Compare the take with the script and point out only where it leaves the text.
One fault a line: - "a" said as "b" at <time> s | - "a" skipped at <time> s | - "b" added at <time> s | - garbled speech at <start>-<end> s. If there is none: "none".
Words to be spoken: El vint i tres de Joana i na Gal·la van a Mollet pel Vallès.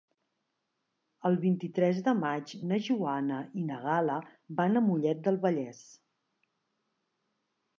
- "maig na" added at 2.2 s
- "pel" said as "del" at 5.3 s